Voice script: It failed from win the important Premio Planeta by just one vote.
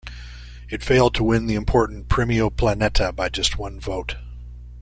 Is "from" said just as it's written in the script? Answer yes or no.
no